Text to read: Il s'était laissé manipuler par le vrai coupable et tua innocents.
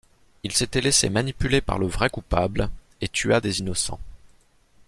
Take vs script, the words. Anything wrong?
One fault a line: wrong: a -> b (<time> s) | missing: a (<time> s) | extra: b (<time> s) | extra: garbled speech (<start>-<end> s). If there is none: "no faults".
extra: des (3.4 s)